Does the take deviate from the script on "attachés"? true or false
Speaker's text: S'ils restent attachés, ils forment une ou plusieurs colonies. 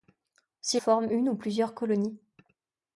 true